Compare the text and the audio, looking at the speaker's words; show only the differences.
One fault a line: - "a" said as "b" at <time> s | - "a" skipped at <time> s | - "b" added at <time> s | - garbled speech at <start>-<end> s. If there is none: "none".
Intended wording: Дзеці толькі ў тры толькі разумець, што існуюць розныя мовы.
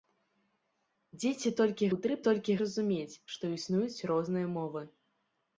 none